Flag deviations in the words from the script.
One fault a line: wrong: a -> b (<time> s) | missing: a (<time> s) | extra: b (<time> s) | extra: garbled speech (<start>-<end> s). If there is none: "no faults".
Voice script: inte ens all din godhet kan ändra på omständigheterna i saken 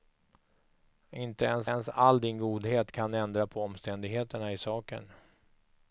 extra: ens (1.6 s)